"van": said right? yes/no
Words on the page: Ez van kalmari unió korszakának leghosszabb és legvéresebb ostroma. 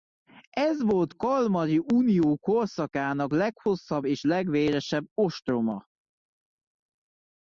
no